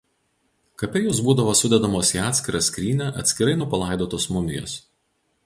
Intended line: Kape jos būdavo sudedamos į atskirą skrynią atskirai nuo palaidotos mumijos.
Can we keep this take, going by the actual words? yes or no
yes